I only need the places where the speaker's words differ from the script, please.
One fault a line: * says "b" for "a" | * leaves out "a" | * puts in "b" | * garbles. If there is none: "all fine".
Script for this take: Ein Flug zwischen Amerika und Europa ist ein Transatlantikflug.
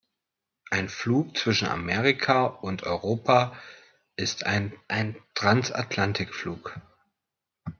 * puts in "ein"